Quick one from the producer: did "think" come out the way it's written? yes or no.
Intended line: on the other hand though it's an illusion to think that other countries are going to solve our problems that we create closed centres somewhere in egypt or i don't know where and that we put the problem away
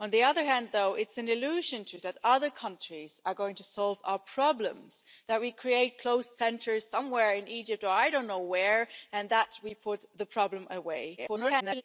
no